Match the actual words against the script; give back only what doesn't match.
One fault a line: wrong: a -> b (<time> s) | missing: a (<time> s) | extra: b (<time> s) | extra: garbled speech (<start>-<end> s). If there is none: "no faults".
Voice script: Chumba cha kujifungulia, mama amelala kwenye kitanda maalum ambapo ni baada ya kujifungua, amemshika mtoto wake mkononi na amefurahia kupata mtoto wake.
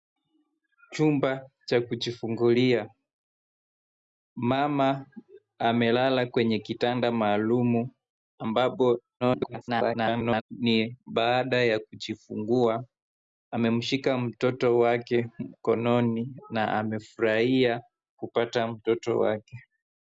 extra: garbled speech (9.2-10.4 s)